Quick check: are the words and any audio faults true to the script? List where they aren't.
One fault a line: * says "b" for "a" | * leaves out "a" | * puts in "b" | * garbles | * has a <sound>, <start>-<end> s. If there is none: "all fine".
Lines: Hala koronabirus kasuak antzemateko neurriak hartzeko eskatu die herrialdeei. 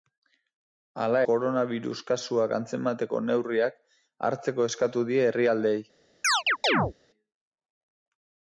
* has a chirp, 6.2-6.9 s